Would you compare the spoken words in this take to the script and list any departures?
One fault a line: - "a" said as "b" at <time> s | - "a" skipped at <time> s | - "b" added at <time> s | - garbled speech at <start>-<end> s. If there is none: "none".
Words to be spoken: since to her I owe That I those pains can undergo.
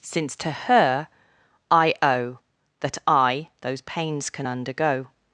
none